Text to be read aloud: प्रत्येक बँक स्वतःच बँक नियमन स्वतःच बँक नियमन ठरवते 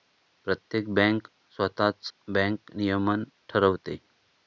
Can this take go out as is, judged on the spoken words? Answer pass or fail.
fail